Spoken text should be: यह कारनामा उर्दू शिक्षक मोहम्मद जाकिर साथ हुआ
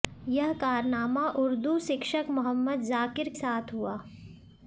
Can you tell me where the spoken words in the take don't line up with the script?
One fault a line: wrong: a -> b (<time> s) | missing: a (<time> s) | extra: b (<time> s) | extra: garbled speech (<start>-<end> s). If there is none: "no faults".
no faults